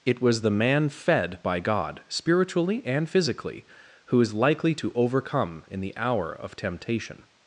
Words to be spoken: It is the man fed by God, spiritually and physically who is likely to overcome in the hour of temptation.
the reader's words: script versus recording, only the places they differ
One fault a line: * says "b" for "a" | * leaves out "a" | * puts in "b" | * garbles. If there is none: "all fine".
* says "was" for "is"